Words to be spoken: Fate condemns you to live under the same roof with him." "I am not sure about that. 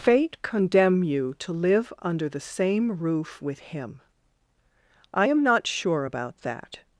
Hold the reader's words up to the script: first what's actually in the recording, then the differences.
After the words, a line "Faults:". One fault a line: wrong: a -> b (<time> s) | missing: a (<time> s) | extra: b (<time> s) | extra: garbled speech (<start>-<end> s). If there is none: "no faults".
Fate condemn you to live under the same roof with him." "I am not sure about that.
Faults:
wrong: condemns -> condemn (0.4 s)